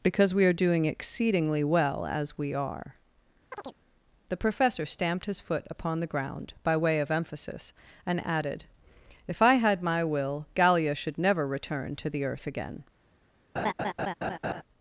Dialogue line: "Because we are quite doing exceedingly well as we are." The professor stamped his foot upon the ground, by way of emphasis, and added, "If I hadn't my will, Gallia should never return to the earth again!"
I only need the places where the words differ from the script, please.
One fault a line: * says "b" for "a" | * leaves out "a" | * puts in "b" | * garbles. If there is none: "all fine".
* leaves out "quite"
* says "had" for "hadn't"